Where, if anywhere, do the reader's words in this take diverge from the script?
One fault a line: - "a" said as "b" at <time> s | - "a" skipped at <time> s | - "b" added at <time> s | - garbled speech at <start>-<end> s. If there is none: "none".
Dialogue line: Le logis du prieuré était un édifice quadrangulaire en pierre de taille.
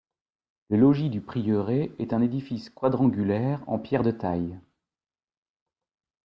- "était" said as "est" at 2.0 s